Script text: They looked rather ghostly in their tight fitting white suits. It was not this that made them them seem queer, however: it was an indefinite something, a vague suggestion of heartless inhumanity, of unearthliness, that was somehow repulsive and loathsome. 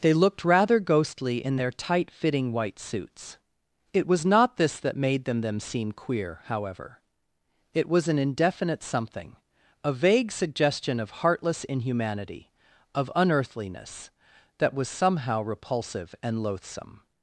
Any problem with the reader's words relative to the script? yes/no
no